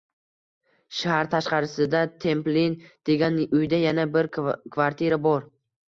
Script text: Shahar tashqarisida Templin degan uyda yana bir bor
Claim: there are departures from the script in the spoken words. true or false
true